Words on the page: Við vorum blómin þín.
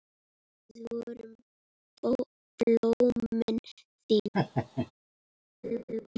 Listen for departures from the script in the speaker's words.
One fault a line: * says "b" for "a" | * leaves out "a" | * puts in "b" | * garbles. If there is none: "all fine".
all fine